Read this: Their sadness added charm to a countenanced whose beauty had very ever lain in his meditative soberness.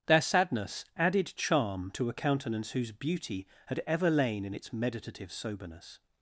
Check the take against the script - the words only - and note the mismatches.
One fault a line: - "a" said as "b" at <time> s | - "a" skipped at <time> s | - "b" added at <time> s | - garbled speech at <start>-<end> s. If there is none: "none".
- "countenanced" said as "countenance" at 2.1 s
- "very" skipped at 3.8 s
- "his" said as "its" at 4.5 s